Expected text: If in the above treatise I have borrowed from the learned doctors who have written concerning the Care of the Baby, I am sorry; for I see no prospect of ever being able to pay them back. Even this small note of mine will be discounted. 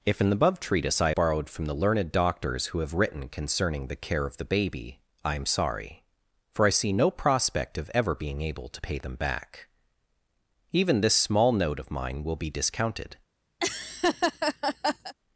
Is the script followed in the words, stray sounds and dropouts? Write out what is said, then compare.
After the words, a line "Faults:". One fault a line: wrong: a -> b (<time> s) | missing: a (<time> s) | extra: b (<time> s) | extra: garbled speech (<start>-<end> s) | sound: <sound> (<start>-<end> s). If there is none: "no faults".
If in the above treatise I borrowed from the learned doctors who have written concerning the Care of the Baby, I am sorry; for I see no prospect of ever being able to pay them back. Even this small note of mine will be discounted.
Faults:
missing: have (1.1 s)
sound: laugh (13.6-15.1 s)